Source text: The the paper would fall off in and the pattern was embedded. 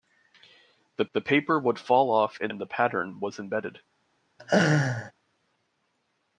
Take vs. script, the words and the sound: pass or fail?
fail